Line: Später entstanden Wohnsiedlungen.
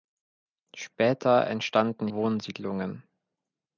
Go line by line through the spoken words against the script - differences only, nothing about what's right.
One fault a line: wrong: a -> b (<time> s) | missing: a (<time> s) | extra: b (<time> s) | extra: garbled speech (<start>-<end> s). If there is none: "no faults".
no faults